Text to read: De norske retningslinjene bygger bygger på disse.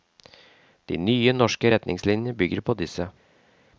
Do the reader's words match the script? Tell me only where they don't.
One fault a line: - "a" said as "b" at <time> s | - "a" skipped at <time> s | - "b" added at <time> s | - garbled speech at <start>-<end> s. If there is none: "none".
- "nye" added at 1.0 s
- "bygger" skipped at 2.6 s